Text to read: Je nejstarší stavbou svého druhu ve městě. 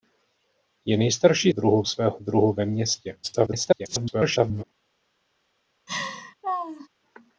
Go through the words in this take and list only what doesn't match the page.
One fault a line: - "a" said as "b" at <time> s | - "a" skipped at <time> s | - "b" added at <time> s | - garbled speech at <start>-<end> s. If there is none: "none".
- "stavbou" said as "druhu" at 1.5 s
- garbled speech at 3.2-4.6 s